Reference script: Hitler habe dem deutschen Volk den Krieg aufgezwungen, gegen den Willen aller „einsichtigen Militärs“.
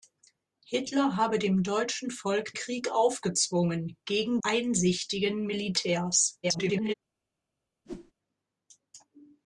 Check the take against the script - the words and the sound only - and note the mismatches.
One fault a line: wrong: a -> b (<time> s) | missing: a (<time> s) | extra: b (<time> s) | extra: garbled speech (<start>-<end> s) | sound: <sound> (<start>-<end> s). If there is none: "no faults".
missing: den (2.5 s)
missing: den Willen aller (4.4 s)
extra: garbled speech (6.4-6.9 s)
sound: whoosh (7.9-8.1 s)